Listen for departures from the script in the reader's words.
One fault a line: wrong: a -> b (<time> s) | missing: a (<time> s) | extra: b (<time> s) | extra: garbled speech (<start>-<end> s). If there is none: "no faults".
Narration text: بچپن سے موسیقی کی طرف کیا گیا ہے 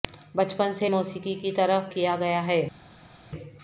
no faults